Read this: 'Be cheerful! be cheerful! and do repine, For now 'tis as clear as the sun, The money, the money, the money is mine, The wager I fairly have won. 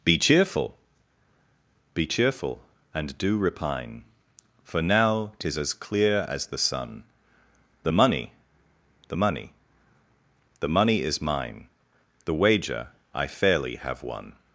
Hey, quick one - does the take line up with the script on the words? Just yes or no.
yes